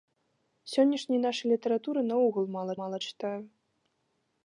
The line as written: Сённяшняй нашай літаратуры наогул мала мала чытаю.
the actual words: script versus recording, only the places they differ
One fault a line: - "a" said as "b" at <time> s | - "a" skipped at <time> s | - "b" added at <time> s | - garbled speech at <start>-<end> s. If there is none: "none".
none